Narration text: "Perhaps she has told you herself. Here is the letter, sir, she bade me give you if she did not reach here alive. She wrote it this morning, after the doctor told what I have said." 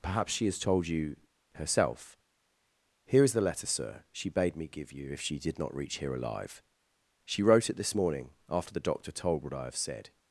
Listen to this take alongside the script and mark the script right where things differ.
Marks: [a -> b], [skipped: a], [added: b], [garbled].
"Perhaps she has told you herself. Here is the letter, sir, she bade me give you if she did not reach here alive. She wrote it this morning, after the doctor told what I have said."